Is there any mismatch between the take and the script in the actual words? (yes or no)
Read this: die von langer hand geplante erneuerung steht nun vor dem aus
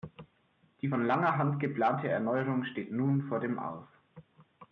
no